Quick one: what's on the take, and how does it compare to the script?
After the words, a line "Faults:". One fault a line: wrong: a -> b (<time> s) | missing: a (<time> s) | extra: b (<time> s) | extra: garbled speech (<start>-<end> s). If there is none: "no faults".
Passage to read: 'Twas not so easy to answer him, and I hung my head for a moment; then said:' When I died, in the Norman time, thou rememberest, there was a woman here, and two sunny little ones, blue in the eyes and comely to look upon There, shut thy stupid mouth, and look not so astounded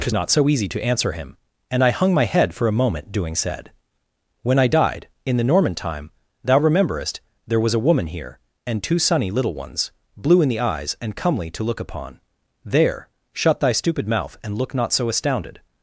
'Twas not so easy to answer him, and I hung my head for a moment; doing said:' When I died, in the Norman time, thou rememberest, there was a woman here, and two sunny little ones, blue in the eyes and comely to look upon There, shut thy stupid mouth, and look not so astounded
Faults:
wrong: then -> doing (3.1 s)